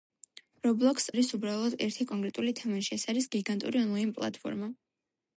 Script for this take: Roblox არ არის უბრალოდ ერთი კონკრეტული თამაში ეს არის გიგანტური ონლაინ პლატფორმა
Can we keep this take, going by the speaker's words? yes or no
no